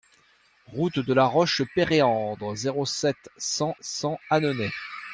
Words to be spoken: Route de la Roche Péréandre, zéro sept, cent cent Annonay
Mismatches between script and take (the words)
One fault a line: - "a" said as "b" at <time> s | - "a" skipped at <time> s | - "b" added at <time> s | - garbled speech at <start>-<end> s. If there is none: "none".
none